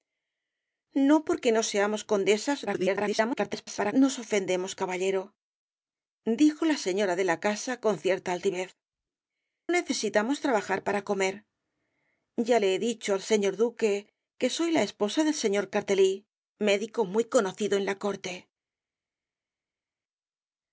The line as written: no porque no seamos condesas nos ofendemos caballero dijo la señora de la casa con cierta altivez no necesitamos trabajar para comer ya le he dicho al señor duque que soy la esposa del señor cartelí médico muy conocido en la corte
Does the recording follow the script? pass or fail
fail